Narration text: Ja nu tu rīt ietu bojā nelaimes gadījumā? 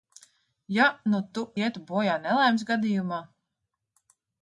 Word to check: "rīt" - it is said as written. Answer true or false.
false